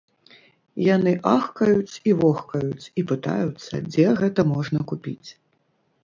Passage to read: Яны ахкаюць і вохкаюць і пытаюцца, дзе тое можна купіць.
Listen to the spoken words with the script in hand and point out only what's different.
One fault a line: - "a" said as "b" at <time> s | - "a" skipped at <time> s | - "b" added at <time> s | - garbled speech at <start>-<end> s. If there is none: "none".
- "тое" said as "гэта" at 4.2 s